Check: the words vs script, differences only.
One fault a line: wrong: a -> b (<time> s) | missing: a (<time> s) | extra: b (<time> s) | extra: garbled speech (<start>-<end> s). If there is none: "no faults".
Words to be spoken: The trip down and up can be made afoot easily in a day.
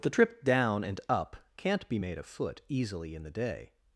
wrong: can -> can't (1.6 s)
wrong: a -> the (3.2 s)